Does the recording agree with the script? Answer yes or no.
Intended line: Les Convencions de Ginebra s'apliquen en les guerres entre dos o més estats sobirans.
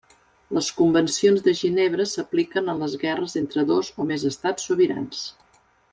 yes